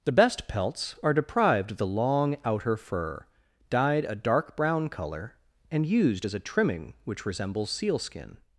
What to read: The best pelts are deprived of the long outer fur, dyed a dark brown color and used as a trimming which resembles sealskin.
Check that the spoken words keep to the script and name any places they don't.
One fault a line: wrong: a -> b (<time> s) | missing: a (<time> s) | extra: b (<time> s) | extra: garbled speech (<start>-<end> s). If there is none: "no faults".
no faults